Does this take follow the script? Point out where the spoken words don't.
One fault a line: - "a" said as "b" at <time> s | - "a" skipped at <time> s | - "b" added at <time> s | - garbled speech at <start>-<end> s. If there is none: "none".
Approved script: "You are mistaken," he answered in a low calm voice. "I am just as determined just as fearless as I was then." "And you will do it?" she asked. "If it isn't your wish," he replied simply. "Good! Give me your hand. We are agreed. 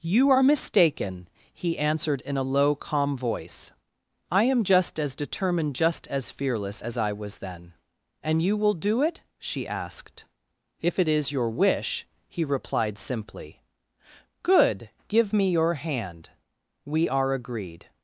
- "isn't" said as "is" at 11.1 s